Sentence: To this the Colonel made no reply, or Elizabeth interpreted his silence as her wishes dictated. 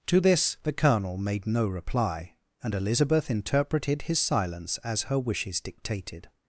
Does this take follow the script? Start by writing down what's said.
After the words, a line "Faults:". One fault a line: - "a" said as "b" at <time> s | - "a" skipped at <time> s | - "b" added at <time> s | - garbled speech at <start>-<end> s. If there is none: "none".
To this the Colonel made no reply, and Elizabeth interpreted his silence as her wishes dictated.
Faults:
- "or" said as "and" at 2.6 s